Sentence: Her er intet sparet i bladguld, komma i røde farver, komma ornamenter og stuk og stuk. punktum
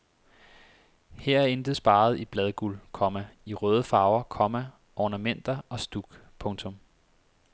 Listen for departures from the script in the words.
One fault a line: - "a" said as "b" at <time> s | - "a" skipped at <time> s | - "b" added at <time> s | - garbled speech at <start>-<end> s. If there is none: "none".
- "og stuk" skipped at 6.2 s